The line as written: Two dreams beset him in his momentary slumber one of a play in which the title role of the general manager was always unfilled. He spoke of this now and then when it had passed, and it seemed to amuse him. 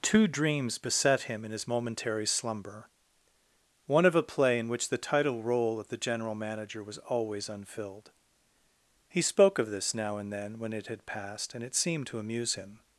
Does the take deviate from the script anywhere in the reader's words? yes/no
no